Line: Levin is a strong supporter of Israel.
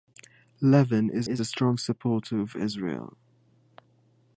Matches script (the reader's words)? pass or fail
fail